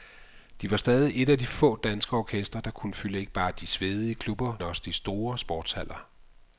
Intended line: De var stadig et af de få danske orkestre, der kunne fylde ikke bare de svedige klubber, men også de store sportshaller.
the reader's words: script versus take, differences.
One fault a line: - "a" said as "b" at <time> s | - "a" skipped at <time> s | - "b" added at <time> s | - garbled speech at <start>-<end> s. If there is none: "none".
- "men" skipped at 4.5 s